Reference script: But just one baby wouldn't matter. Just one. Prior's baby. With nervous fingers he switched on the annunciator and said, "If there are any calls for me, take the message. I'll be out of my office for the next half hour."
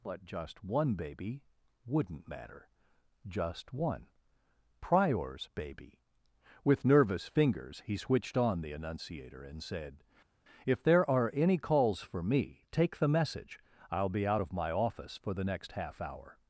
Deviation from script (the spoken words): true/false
false